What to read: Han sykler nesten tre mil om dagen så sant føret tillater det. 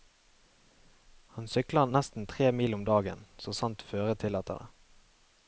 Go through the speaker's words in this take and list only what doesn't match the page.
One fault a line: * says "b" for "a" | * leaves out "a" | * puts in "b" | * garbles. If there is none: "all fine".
all fine